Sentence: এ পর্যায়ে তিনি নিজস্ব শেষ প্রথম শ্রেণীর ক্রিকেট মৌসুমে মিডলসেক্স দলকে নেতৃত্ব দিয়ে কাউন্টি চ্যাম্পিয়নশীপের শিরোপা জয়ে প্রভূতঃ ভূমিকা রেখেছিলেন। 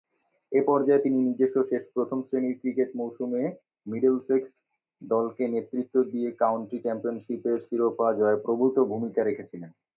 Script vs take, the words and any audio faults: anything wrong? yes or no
no